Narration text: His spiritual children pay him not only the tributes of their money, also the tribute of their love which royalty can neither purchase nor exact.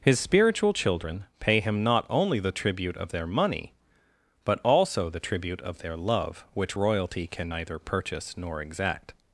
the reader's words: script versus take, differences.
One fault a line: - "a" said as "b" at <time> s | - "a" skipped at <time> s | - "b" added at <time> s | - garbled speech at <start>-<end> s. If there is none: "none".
- "tributes" said as "tribute" at 2.5 s
- "but" added at 4.4 s